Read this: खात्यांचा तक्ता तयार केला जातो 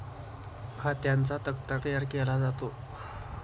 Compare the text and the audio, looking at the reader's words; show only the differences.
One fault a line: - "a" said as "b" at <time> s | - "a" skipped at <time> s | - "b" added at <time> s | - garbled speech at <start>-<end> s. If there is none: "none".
none